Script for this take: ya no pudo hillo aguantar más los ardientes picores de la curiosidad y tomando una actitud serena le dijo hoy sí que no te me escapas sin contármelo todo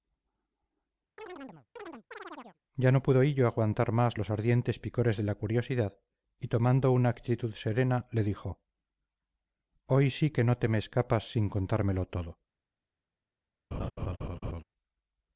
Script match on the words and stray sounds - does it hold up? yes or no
no